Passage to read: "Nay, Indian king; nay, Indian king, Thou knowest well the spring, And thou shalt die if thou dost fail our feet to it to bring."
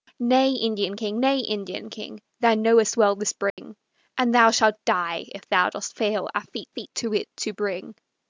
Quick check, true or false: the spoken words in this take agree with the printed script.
false